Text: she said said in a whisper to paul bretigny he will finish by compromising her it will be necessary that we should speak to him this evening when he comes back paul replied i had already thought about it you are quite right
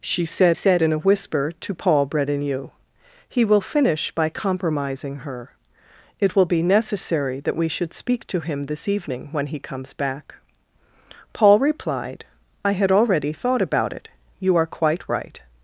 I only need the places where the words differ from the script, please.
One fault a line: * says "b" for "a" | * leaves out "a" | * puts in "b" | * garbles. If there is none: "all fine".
all fine